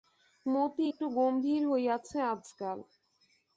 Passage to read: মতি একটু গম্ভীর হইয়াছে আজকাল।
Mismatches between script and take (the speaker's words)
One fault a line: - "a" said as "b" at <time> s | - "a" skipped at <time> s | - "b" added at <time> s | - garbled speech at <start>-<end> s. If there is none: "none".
none